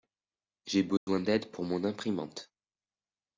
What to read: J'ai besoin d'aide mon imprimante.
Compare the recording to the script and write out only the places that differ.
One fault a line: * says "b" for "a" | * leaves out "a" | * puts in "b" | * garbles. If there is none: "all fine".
* puts in "pour"